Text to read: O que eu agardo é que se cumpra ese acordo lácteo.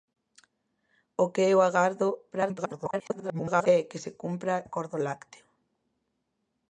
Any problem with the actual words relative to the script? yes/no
yes